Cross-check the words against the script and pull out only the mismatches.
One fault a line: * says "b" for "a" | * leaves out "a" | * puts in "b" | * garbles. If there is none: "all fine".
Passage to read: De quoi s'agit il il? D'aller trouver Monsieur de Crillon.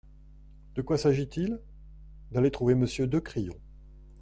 * leaves out "il"